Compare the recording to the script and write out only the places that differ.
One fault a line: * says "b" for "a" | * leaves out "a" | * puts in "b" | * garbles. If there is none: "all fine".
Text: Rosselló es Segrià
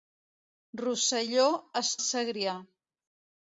all fine